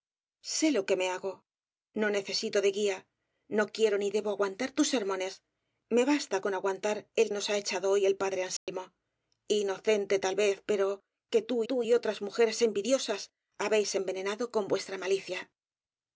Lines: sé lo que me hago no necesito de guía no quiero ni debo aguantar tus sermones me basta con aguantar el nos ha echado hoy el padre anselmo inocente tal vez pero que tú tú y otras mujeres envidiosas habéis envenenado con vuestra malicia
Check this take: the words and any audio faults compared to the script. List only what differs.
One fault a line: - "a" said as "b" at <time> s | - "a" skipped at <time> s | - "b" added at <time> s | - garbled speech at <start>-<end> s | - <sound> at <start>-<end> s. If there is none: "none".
- dropout at 8.6-8.7 s